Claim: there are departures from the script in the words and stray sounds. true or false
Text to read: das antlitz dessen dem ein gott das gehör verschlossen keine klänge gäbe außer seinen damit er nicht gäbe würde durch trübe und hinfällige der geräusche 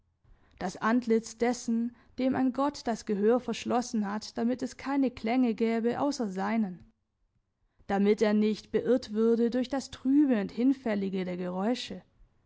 true